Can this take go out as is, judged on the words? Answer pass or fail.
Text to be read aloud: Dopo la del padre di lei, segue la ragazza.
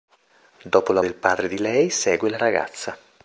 pass